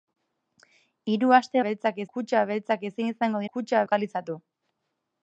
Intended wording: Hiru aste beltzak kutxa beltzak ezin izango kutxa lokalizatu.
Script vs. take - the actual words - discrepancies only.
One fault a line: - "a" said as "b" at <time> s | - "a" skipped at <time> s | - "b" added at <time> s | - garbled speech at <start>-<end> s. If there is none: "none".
none